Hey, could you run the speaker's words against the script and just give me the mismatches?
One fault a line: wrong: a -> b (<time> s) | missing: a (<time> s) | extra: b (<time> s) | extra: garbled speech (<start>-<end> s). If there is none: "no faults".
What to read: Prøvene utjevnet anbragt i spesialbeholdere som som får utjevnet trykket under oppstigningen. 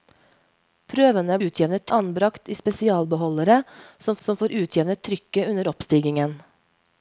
no faults